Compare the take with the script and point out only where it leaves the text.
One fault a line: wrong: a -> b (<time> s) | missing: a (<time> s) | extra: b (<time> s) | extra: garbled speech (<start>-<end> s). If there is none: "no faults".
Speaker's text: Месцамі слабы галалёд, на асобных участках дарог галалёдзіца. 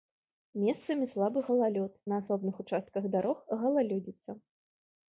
no faults